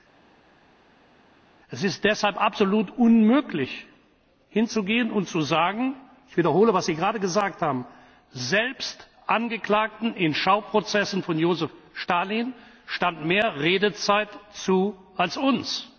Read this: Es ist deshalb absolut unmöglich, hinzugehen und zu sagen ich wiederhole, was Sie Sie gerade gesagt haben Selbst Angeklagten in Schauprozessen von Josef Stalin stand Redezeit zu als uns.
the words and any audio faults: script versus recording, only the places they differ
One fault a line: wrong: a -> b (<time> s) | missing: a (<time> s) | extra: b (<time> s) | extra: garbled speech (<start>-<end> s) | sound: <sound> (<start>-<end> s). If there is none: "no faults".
missing: Sie (7.0 s)
extra: mehr (13.3 s)